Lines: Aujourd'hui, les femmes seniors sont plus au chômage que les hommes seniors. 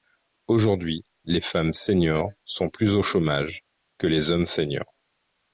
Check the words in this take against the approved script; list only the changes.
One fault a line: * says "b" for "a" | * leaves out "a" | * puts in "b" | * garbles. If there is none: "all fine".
all fine